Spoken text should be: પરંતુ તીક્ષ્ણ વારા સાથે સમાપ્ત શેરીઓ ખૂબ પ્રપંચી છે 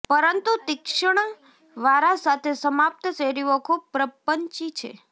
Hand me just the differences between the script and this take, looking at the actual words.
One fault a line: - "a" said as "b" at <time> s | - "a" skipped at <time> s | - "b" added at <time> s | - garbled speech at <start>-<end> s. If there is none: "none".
none